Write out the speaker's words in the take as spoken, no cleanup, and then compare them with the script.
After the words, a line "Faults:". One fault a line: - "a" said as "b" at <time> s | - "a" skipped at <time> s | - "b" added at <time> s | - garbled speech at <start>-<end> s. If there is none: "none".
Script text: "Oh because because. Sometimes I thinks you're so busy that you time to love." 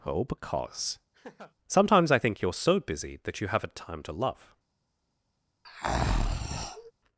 "Oh because. Sometimes I think you're so busy that you haven't time to love."
Faults:
- "because" skipped at 1.0 s
- "thinks" said as "think" at 2.2 s
- "haven't" added at 3.5 s